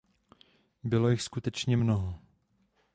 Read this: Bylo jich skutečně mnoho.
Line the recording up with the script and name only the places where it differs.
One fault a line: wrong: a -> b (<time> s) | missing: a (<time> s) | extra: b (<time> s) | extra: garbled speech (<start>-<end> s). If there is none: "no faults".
no faults